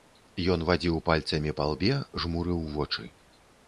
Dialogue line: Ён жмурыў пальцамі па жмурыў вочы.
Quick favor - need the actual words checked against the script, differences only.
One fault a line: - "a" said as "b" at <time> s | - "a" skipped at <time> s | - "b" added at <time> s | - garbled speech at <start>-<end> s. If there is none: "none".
- "жмурыў" said as "вадзіў" at 0.7 s
- "лбе" added at 1.8 s